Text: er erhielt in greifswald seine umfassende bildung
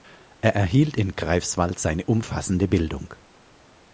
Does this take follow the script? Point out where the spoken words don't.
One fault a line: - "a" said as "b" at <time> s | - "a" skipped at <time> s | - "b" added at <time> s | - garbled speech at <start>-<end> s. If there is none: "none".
none